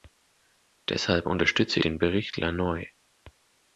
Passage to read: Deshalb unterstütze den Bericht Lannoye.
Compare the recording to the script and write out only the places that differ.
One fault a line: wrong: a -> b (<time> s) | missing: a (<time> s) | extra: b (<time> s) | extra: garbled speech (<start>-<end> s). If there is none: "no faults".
no faults